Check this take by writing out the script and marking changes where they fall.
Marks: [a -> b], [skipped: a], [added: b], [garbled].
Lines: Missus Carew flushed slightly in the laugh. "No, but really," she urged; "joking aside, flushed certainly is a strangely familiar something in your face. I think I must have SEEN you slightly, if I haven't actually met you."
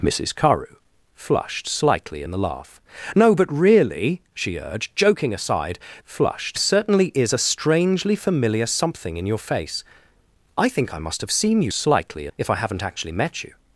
Missus Carew flushed slightly in the laugh. "No, but really," she urged; "joking aside, flushed certainly is a strangely familiar something in your face. I think I must have SEEN you slightly, if I haven't actually met you."